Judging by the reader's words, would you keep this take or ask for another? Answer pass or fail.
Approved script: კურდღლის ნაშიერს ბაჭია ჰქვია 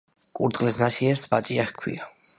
pass